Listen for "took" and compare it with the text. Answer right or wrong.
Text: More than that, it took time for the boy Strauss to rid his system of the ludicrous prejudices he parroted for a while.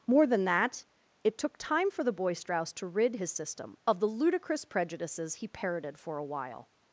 right